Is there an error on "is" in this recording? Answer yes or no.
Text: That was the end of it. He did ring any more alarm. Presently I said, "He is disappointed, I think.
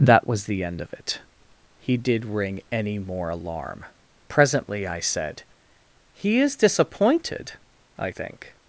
no